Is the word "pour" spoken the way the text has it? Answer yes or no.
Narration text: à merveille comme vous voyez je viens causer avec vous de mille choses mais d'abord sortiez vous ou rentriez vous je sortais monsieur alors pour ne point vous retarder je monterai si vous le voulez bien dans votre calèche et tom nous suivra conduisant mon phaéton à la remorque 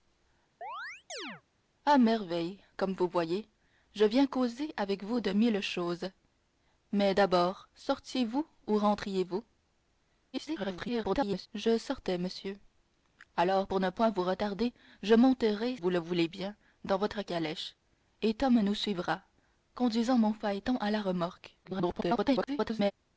yes